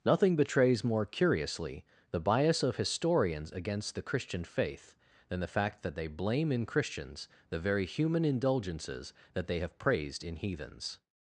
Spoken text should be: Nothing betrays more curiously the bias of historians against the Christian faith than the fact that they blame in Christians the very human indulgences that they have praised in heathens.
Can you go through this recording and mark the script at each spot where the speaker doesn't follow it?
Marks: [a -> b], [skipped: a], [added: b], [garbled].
Nothing betrays more curiously the bias of historians against the Christian faith than the fact that they blame in Christians the very human indulgences that they have praised in heathens.